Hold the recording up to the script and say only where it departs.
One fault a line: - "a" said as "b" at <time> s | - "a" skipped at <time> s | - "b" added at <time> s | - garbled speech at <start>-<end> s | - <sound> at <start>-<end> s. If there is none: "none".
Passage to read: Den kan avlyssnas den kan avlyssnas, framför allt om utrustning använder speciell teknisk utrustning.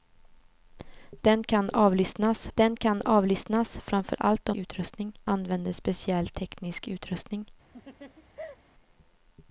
- laugh at 7.7-8.6 s